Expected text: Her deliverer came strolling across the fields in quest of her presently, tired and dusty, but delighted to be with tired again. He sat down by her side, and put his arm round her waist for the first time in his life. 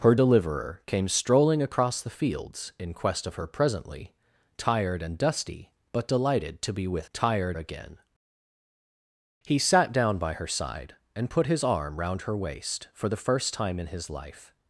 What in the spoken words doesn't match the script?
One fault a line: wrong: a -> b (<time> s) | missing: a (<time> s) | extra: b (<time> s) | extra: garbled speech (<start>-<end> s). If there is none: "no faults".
no faults